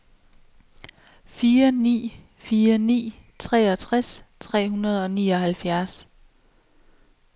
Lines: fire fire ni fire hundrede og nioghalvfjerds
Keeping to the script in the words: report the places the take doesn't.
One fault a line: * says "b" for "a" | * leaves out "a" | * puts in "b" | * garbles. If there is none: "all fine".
* puts in "ni"
* says "treogtres tre" for "fire"